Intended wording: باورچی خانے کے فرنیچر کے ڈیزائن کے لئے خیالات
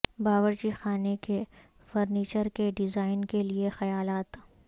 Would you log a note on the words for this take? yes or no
no